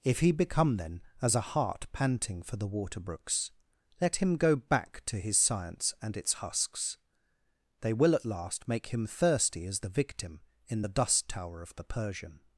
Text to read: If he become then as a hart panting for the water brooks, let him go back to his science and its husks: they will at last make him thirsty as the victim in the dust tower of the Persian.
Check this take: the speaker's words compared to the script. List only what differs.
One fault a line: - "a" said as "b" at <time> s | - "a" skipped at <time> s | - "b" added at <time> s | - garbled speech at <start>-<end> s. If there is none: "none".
none